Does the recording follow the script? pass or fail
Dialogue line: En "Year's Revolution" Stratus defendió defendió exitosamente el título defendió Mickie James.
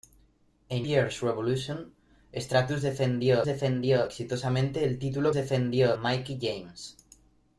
pass